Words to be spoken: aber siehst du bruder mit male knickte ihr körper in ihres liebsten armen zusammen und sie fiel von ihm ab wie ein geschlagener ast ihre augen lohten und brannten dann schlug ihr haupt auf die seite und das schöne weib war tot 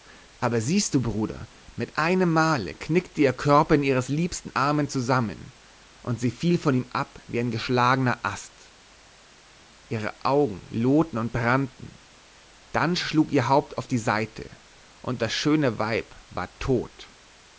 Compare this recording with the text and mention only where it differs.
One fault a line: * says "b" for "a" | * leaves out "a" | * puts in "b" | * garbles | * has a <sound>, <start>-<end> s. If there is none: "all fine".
* puts in "einem"